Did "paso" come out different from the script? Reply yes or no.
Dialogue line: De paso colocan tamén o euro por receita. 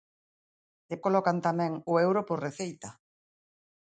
yes